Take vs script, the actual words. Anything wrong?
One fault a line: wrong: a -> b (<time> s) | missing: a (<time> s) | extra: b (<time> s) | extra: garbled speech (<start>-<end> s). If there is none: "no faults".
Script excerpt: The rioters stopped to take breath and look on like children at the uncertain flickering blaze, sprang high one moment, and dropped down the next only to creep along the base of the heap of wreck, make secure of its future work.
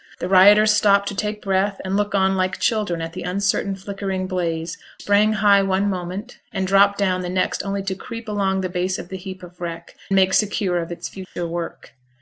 no faults